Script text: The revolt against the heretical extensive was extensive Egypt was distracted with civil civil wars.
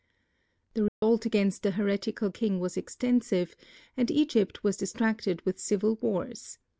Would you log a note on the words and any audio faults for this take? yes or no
yes